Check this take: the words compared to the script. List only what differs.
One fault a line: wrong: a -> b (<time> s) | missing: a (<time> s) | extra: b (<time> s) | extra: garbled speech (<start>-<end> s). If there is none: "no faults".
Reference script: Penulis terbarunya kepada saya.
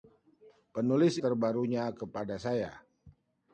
no faults